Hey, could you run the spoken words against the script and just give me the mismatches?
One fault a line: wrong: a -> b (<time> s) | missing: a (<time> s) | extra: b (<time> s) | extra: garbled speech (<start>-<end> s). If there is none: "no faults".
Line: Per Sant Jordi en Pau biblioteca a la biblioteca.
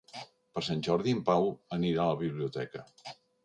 wrong: biblioteca -> anirà (1.8 s)